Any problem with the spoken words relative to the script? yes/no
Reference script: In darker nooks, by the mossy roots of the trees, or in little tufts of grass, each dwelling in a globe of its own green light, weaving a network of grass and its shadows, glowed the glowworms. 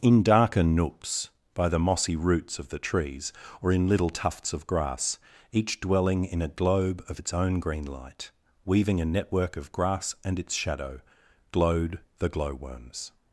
yes